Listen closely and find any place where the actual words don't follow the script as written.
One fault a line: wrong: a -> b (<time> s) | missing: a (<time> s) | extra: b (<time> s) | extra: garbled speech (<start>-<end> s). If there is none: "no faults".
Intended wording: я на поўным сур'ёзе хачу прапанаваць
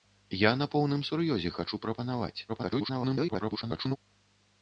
extra: garbled speech (2.5-4.0 s)